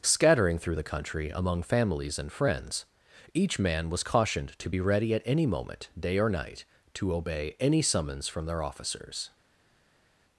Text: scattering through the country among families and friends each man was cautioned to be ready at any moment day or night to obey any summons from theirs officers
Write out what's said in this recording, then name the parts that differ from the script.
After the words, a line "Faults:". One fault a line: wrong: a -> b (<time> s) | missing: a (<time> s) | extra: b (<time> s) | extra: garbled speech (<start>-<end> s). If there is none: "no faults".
scattering through the country among families and friends each man was cautioned to be ready at any moment day or night to obey any summons from their officers
Faults:
wrong: theirs -> their (8.5 s)